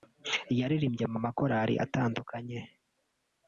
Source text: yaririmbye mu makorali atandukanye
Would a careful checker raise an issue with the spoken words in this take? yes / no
no